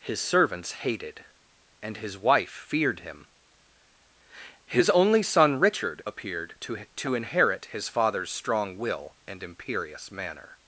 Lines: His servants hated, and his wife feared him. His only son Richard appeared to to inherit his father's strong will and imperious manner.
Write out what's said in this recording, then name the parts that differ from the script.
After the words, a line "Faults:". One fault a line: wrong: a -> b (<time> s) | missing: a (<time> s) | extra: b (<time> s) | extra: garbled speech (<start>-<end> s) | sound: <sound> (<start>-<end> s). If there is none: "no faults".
His servants hated, and his wife feared him. His only son Richard appeared to to inherit his father's strong will and imperious manner.
Faults:
no faults